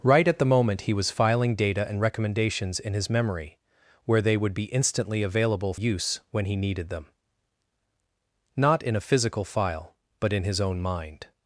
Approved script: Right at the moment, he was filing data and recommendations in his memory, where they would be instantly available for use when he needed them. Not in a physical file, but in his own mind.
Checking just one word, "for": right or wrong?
wrong